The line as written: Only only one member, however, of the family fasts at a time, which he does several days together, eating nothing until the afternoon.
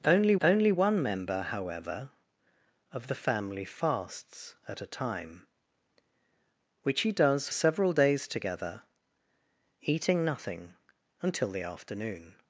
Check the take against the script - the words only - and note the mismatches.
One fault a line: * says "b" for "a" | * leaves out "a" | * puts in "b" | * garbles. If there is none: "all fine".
all fine